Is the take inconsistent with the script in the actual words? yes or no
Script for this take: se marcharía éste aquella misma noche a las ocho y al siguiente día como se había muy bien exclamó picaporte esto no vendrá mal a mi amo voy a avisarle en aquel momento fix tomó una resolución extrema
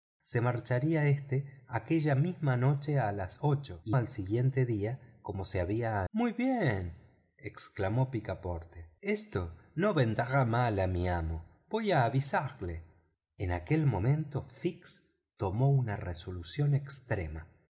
no